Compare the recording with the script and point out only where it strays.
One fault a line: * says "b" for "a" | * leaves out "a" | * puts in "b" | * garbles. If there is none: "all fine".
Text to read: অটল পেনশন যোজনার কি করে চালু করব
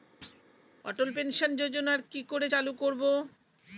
all fine